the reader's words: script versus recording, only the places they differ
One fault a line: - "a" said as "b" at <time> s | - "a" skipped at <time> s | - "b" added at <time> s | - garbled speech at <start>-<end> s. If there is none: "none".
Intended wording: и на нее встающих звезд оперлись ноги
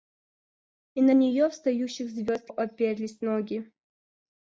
none